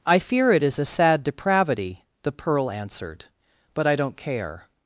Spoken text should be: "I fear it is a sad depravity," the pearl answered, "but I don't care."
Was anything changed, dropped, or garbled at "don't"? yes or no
no